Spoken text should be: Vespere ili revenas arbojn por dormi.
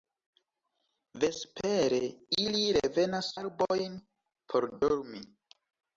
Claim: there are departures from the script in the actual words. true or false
false